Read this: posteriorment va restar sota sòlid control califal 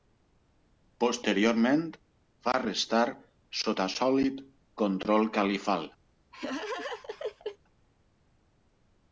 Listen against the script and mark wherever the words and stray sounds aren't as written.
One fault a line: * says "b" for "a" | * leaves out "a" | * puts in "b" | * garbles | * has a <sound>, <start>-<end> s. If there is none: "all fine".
* has a laugh, 6.3-7.6 s